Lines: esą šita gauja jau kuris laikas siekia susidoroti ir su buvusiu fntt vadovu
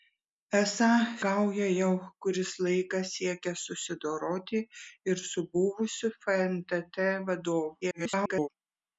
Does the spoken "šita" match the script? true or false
false